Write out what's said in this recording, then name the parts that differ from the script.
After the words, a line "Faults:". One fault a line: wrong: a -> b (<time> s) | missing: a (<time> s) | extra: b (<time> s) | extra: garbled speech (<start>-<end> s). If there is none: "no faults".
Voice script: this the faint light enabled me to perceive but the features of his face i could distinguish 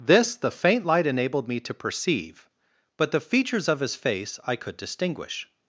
this the faint light enabled me to perceive but the features of his face i could distinguish
Faults:
no faults